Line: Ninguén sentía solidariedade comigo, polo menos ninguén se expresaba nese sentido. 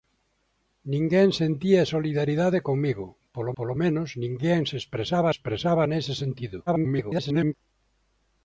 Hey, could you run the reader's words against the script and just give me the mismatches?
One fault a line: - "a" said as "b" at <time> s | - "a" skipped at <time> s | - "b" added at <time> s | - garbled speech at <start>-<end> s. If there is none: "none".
- "polo" added at 3.6 s
- "expresaba" added at 5.3 s
- garbled speech at 6.7-7.5 s